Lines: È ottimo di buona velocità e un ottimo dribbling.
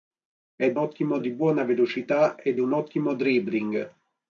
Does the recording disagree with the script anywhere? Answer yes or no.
no